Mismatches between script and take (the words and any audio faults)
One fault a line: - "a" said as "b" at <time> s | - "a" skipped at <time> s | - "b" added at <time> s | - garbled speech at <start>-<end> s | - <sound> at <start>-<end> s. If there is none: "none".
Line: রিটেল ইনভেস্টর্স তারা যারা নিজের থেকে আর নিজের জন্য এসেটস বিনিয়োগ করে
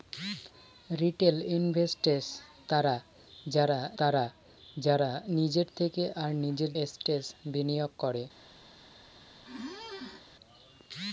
- "তারা যারা" added at 4.0 s
- "জন্য" skipped at 6.7 s
- squeak at 9.4-10.2 s